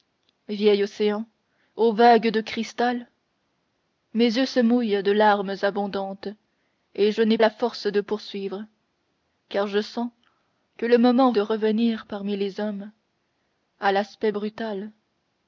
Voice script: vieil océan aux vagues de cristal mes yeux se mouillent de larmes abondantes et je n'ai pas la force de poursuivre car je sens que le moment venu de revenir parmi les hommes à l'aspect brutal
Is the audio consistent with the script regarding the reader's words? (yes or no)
no